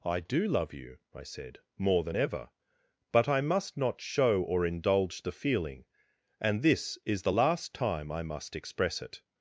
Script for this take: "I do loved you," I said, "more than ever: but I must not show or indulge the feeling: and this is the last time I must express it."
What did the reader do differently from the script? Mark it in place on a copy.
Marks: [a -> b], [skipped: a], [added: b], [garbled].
"I do [loved -> love] you," I said, "more than ever: but I must not show or indulge the feeling: and this is the last time I must express it."